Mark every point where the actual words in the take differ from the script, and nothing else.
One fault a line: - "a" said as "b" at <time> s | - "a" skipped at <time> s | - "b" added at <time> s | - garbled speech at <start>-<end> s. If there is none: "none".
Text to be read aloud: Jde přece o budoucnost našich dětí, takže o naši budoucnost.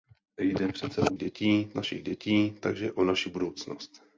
- "budoucnost" said as "dětí" at 1.2 s